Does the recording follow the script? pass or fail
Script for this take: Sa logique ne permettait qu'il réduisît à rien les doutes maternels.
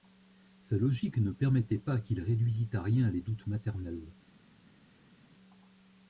fail